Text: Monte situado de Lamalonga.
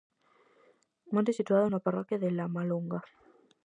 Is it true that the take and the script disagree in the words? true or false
true